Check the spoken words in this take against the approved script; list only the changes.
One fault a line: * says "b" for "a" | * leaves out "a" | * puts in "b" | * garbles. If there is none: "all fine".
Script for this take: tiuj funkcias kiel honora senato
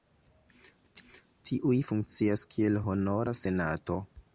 all fine